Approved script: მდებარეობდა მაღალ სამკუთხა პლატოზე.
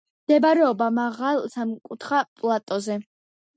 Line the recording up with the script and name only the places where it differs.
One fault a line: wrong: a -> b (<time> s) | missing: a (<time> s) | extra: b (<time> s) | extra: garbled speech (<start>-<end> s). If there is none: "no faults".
no faults